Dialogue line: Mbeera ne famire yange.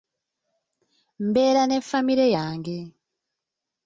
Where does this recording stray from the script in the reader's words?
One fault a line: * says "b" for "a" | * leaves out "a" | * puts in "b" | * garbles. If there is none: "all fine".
all fine